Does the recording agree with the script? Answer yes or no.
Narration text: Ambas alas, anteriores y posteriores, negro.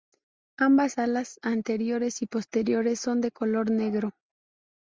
no